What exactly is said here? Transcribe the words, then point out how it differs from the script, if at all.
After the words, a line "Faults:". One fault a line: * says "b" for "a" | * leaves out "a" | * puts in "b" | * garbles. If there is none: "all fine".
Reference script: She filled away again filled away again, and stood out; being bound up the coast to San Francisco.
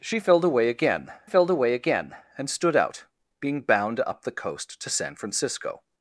She filled away again filled away again, and stood out; being bound up the coast to San Francisco.
Faults:
all fine